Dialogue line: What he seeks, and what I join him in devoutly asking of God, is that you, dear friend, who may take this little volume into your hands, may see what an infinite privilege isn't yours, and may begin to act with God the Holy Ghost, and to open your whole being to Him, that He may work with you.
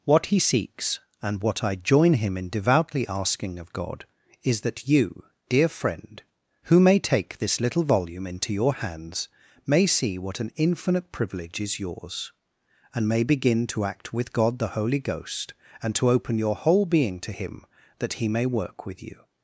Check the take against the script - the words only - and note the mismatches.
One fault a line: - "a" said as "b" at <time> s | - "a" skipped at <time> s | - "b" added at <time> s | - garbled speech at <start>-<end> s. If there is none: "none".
- "isn't" said as "is" at 11.6 s